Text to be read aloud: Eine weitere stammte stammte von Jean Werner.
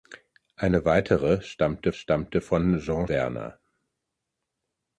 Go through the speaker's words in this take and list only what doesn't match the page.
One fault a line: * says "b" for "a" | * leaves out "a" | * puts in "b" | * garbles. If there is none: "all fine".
all fine